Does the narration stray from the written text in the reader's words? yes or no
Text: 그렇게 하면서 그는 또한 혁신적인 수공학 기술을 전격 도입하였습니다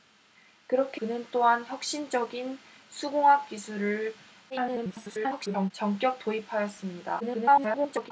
yes